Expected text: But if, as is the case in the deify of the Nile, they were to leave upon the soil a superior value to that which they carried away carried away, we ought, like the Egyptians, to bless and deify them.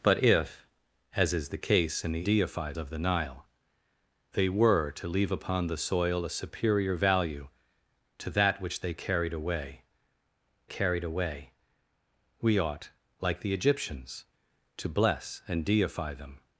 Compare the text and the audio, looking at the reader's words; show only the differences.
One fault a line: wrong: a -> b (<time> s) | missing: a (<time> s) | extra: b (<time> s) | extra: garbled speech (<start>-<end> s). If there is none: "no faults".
no faults